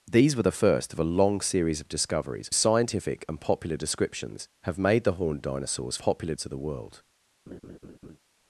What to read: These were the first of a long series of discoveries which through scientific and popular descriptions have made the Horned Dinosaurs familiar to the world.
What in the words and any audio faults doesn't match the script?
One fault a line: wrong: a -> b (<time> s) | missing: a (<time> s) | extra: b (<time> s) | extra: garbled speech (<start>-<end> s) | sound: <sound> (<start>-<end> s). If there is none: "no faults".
missing: which through (2.5 s)
wrong: familiar -> popular (6.0 s)
sound: laugh (7.5-8.2 s)